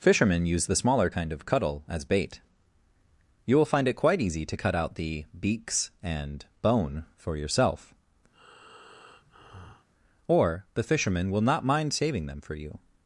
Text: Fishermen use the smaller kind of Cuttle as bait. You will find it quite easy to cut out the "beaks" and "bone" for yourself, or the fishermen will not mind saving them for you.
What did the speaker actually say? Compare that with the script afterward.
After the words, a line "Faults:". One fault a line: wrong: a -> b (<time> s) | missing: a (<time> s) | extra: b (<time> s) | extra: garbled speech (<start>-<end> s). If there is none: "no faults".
Fishermen use the smaller kind of Cuttle as bait. You will find it quite easy to cut out the "beaks" and "bone" for yourself, or the fishermen will not mind saving them for you.
Faults:
no faults